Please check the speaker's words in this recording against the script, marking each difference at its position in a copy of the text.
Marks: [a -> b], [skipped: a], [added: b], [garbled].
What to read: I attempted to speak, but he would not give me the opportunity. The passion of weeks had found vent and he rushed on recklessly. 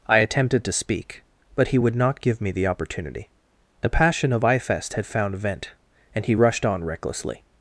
I attempted to speak, but he would not give me the opportunity. The passion of [weeks -> ifest] had found vent and he rushed on recklessly.